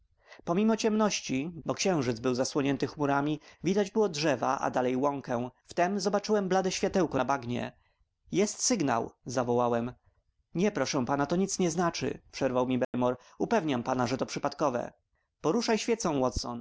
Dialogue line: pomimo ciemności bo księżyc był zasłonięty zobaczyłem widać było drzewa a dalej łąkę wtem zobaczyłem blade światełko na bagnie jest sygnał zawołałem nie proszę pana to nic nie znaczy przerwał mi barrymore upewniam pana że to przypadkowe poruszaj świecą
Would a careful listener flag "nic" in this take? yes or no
no